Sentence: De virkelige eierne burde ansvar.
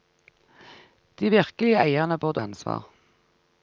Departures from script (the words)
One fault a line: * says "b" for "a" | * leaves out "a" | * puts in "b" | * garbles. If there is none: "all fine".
all fine